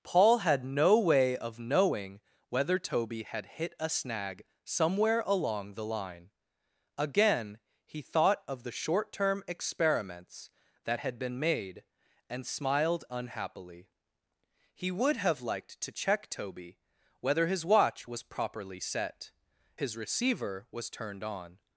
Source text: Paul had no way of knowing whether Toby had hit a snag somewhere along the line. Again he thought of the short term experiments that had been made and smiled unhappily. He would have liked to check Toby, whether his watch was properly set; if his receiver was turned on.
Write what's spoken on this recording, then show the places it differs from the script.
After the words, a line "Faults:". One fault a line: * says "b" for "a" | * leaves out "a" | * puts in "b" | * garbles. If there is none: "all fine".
Paul had no way of knowing whether Toby had hit a snag somewhere along the line. Again he thought of the short term experiments that had been made and smiled unhappily. He would have liked to check Toby, whether his watch was properly set; his receiver was turned on.
Faults:
* leaves out "if"